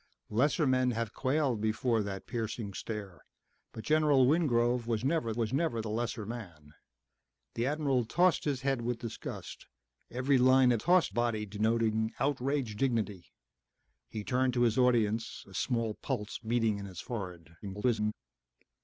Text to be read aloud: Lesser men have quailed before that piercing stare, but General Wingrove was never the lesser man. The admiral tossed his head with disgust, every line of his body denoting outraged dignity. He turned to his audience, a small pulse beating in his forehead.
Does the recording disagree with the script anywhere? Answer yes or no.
yes